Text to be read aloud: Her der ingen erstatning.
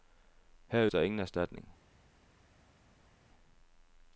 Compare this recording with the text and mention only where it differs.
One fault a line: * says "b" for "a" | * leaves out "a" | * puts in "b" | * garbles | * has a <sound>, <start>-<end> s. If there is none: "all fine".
all fine